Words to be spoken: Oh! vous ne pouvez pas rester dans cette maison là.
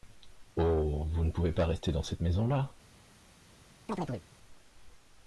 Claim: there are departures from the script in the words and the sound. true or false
true